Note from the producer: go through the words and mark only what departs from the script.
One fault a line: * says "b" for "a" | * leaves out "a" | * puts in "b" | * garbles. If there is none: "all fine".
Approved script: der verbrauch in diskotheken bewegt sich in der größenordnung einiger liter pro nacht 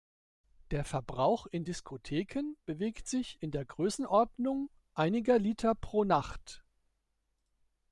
all fine